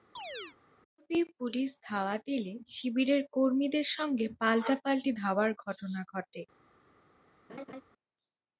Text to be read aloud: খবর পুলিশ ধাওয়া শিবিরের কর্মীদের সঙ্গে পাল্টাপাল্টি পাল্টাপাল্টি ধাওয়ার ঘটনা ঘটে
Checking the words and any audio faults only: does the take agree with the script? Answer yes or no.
no